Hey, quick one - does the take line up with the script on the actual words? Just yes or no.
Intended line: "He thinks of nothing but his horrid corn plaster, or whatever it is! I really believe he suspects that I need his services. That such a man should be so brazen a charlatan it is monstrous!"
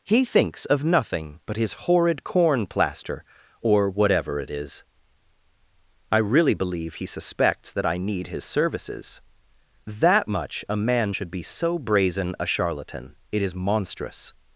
no